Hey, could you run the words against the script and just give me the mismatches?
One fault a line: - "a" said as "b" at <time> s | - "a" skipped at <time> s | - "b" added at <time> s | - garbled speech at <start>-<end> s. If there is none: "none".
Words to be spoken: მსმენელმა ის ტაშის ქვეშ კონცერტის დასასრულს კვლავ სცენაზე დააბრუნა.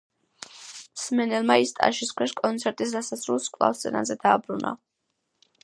none